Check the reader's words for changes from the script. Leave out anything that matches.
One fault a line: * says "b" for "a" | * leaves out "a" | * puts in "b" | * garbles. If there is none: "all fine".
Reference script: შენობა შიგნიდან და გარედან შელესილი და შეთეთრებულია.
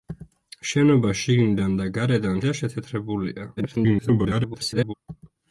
* leaves out "შელესილი"
* garbles